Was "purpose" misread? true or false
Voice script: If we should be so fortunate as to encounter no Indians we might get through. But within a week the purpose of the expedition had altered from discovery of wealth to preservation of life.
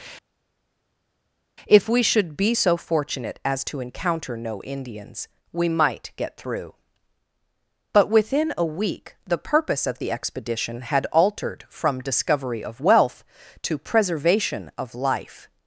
false